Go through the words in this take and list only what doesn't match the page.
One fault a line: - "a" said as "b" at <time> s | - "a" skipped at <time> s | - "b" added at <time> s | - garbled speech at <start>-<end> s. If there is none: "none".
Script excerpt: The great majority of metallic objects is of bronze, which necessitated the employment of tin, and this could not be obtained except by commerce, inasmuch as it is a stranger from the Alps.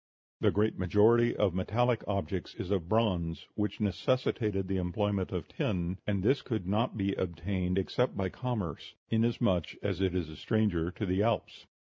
- "from" said as "to" at 10.9 s